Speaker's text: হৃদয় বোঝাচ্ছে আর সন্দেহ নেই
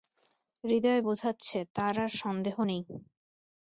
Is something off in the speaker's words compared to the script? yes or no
yes